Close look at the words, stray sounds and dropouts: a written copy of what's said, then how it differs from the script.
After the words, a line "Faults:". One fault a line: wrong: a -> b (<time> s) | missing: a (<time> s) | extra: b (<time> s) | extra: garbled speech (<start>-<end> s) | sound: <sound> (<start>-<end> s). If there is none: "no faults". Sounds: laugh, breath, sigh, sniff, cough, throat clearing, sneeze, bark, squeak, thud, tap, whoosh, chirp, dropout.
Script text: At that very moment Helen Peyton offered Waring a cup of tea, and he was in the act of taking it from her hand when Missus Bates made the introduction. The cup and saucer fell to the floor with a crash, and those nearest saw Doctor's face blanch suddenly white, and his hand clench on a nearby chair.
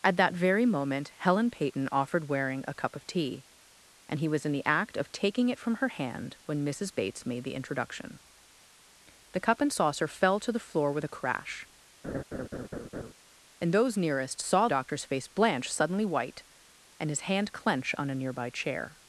At that very moment Helen Peyton offered Waring a cup of tea, and he was in the act of taking it from her hand when Missus Bates made the introduction. The cup and saucer fell to the floor with a crash, and those nearest saw Doctor's face blanch suddenly white, and his hand clench on a nearby chair.
Faults:
sound: laugh (12.0-13.1 s)